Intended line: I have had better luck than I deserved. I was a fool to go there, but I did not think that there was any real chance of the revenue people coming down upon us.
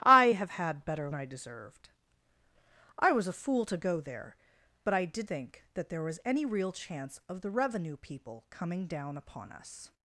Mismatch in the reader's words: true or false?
true